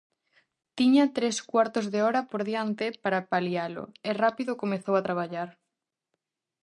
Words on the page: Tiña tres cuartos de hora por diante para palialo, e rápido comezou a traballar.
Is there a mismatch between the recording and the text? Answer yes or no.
no